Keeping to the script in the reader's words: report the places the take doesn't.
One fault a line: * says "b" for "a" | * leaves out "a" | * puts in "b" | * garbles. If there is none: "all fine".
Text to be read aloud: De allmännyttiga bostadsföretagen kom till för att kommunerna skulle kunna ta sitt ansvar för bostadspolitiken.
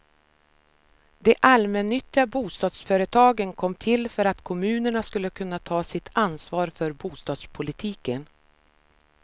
all fine